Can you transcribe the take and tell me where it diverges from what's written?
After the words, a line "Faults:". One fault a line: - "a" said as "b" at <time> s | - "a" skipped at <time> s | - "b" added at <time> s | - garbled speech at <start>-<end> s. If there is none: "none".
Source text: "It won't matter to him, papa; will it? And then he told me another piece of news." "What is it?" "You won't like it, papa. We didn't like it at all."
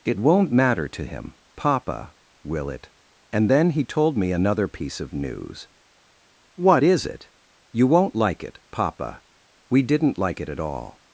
"It won't matter to him, papa; will it? And then he told me another piece of news." "What is it?" "You won't like it, papa. We didn't like it at all."
Faults:
none